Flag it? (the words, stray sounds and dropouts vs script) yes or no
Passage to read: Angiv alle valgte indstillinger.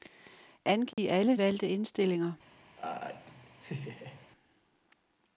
yes